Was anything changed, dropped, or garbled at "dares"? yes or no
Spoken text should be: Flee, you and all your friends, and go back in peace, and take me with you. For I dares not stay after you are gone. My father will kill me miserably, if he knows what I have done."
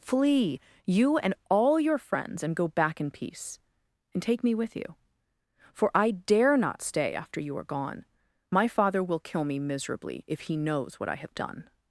yes